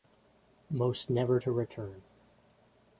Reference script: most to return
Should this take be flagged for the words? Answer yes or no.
yes